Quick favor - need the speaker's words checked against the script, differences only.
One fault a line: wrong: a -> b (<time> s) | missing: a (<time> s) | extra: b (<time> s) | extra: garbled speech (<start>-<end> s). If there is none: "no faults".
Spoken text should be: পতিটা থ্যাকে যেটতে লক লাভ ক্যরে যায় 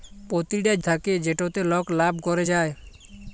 no faults